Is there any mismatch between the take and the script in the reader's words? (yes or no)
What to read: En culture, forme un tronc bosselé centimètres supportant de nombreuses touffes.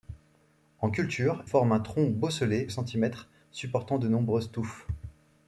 no